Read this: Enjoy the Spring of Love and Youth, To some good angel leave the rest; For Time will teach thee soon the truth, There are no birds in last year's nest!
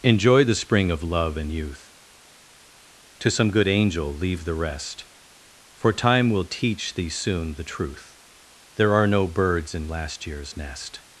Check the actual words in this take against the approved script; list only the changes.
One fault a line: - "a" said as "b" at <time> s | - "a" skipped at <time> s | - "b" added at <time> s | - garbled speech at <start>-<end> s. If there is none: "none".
none